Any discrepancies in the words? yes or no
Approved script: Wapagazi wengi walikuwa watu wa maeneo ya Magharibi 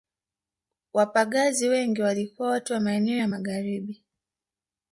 no